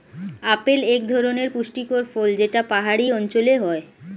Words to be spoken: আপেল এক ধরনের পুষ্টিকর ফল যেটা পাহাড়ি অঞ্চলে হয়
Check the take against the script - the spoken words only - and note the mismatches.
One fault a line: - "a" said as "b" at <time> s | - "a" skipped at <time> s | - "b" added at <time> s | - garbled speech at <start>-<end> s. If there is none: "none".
none